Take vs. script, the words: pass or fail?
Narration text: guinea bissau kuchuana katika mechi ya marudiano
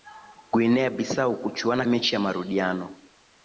fail